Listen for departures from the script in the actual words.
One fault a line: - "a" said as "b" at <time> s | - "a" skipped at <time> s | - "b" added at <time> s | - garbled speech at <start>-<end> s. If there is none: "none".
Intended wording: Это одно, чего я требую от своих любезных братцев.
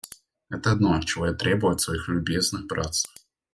none